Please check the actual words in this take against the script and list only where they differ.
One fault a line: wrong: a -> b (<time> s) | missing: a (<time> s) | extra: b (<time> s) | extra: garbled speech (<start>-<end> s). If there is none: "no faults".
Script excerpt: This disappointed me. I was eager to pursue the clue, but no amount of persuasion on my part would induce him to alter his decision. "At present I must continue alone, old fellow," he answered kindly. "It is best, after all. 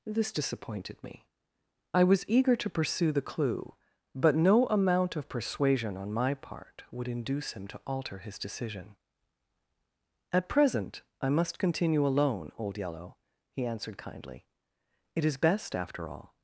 wrong: fellow -> yellow (12.8 s)